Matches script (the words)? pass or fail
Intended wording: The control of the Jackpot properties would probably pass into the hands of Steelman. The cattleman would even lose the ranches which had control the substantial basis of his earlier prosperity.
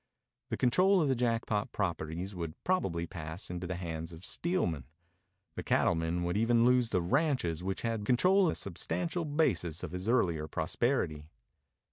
pass